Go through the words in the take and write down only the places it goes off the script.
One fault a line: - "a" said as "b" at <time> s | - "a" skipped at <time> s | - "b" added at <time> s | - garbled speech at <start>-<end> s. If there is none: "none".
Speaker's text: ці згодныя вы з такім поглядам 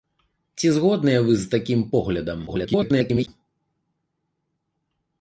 - garbled speech at 2.5-3.3 s